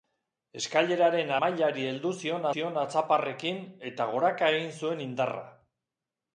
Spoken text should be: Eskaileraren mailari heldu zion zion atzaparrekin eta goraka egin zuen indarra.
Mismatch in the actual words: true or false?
false